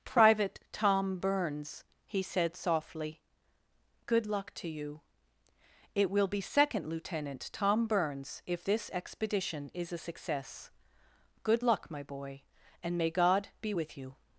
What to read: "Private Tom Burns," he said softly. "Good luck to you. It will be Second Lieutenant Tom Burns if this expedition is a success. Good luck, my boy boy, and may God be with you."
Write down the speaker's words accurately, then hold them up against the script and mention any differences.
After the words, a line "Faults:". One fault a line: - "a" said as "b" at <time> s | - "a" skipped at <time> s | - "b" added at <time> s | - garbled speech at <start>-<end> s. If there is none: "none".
"Private Tom Burns," he said softly. "Good luck to you. It will be Second Lieutenant Tom Burns if this expedition is a success. Good luck, my boy, and may God be with you."
Faults:
- "boy" skipped at 12.4 s